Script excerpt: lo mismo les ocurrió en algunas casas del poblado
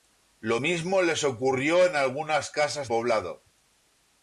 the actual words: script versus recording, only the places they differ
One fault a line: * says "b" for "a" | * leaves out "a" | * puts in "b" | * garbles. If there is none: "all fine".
* leaves out "del"